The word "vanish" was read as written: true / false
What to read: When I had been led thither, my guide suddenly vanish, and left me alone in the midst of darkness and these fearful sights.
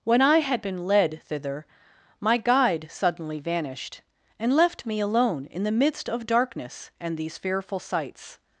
false